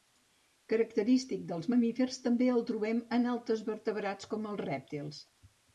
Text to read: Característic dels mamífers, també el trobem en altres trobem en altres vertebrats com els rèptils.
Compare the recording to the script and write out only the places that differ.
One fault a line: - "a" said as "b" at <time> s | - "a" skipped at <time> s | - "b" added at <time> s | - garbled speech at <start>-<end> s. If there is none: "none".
- "trobem en altres" skipped at 3.7 s